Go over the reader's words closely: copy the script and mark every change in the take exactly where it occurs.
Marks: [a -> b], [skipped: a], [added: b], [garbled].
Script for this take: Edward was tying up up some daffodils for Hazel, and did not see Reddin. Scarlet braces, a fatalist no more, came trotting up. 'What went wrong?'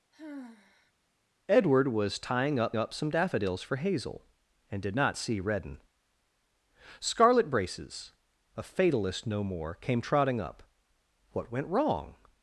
Edward was tying up up some daffodils for Hazel, and did not see Reddin. Scarlet braces, a fatalist no more, came trotting up. 'What went wrong?'